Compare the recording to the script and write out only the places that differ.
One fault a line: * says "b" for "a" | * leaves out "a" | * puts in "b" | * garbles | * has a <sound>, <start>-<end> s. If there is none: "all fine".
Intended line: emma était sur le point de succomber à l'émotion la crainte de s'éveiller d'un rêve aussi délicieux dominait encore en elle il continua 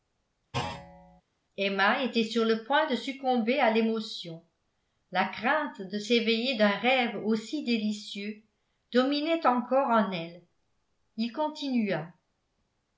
* has a thud, 0.5-1.2 s